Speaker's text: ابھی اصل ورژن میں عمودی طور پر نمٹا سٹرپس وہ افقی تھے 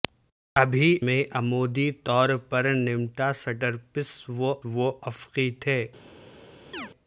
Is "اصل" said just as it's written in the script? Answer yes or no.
no